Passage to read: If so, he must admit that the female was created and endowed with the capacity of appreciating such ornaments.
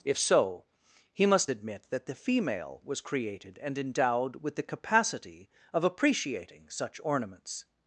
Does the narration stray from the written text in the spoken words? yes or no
no